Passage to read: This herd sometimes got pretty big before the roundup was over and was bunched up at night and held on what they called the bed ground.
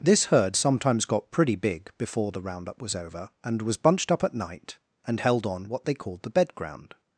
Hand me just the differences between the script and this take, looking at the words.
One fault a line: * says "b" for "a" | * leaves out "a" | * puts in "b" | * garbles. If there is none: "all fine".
all fine